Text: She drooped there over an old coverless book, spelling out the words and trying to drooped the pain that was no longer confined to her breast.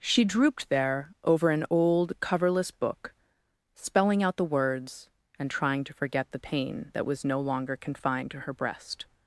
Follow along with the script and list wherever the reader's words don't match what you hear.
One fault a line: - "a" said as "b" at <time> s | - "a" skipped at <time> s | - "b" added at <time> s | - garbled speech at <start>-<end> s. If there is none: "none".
- "drooped" said as "forget" at 5.9 s